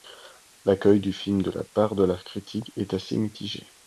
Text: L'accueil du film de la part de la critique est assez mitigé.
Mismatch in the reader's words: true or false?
false